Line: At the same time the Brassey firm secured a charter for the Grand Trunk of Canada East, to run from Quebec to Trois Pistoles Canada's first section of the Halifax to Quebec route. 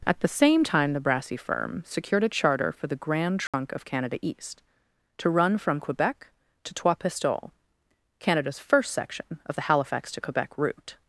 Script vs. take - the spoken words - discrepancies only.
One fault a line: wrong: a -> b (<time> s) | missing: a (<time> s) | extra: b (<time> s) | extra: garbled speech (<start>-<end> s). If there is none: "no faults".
no faults